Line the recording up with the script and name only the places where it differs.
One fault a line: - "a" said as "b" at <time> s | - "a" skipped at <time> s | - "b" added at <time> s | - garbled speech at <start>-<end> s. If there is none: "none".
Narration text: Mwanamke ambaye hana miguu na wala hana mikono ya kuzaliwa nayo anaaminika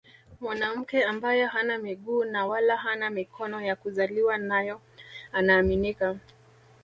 none